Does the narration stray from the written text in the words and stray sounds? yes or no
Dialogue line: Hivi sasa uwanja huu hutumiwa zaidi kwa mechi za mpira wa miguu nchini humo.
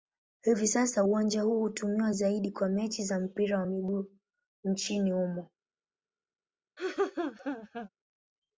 yes